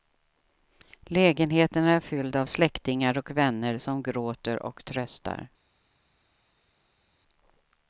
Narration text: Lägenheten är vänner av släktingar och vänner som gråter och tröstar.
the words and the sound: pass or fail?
fail